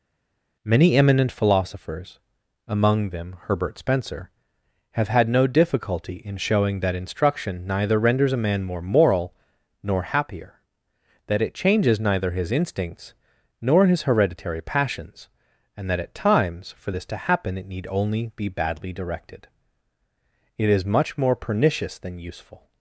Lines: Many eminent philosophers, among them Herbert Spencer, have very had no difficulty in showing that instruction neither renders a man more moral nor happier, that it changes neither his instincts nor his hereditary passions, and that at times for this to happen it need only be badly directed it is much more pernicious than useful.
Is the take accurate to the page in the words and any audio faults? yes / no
no